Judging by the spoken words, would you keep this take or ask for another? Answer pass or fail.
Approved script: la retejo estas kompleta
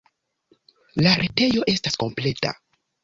pass